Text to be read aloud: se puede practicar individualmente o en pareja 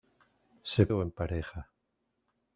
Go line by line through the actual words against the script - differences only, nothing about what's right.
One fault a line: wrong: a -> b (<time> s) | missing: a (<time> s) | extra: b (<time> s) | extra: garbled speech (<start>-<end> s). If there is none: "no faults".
missing: puede practicar individualmente (0.9 s)